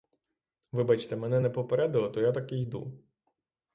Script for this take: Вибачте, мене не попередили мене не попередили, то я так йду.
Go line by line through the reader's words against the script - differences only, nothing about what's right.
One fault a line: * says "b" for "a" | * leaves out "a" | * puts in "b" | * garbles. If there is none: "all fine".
* leaves out "мене не попередили"
* puts in "і"